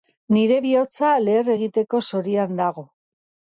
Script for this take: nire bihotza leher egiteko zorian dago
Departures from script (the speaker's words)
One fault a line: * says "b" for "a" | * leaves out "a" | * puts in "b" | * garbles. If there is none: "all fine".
all fine